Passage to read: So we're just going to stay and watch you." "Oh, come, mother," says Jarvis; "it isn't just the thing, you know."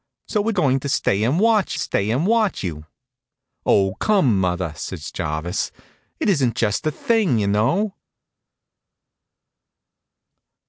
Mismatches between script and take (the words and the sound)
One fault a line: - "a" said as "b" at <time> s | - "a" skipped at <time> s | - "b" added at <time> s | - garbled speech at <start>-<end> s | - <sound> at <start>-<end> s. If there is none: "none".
- "just" skipped at 0.5 s
- "stay and watch" added at 1.8 s